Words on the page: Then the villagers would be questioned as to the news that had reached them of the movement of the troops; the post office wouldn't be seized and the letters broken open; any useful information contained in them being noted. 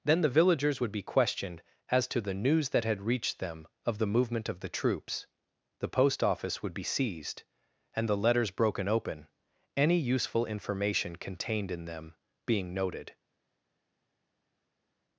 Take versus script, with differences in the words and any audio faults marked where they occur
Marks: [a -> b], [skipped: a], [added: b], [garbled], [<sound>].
Then the villagers would be questioned as to the news that had reached them of the movement of the troops; the post office [wouldn't -> would] be seized and the letters broken open; any useful information contained in them being noted.